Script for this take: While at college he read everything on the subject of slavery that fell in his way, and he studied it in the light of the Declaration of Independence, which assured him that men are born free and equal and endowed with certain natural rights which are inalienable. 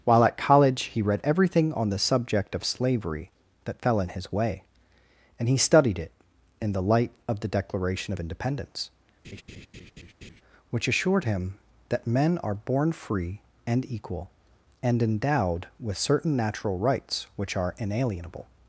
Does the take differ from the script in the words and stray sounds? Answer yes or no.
yes